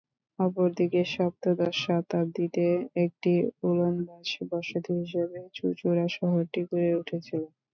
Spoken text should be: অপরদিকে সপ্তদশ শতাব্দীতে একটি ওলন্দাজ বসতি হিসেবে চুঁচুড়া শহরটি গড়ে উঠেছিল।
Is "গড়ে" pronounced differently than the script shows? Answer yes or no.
no